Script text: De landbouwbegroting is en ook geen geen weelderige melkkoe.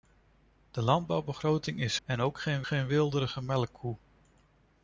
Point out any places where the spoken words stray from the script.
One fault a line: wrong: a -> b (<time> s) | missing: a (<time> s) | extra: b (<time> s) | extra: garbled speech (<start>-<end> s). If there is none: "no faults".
no faults